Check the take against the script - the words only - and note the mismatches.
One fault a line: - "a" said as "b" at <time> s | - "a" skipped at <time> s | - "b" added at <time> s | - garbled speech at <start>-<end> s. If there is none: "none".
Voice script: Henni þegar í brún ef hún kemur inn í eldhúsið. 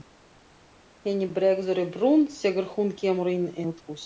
- "þegar" said as "bregður" at 1.4 s
- "ef" said as "þegar" at 2.4 s